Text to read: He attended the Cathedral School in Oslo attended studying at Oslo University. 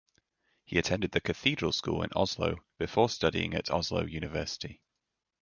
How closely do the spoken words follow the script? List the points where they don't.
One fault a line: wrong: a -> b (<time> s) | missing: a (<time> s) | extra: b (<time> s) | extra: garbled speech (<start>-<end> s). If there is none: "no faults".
wrong: attended -> before (2.8 s)